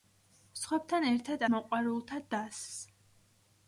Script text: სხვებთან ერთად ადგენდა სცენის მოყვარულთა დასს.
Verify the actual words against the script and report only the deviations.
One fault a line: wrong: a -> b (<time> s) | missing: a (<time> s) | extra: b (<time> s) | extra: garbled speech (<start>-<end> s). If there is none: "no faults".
missing: ადგენდა სცენის (1.4 s)